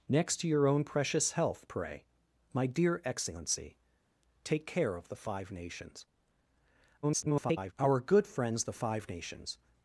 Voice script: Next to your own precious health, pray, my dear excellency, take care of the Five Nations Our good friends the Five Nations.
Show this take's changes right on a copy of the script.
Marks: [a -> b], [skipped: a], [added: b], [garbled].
Next to your own precious health, pray, my dear excellency, take care of the Five Nations [garbled] Our good friends the Five Nations.